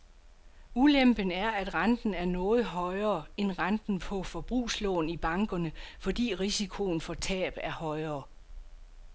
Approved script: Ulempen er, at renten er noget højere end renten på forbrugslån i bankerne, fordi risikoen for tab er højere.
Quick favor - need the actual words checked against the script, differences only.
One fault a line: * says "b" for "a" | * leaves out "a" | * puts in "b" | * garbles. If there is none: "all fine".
all fine